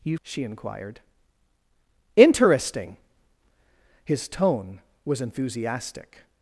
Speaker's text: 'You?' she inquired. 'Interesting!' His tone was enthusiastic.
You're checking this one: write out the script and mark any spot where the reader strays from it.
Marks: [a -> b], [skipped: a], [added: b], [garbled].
'You?' she inquired. 'Interesting!' His tone was enthusiastic.